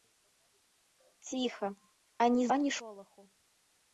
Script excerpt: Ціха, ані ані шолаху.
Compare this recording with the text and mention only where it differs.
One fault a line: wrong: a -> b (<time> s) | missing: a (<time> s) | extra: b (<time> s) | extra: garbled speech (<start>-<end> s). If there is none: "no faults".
no faults